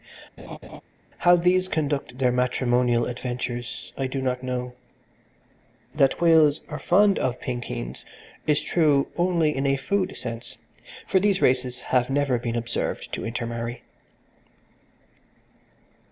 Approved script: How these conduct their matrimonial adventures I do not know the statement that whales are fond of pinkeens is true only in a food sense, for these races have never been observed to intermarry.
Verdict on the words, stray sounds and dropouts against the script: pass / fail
fail